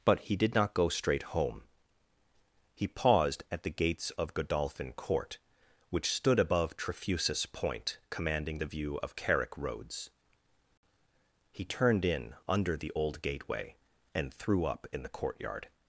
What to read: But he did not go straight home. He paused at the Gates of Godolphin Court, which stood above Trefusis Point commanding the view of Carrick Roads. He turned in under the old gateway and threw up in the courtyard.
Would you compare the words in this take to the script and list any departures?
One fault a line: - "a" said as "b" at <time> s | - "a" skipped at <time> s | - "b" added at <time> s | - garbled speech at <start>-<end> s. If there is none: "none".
none